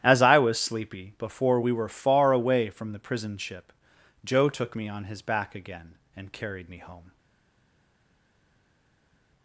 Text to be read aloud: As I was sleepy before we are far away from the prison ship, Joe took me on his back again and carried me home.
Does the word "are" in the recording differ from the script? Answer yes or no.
yes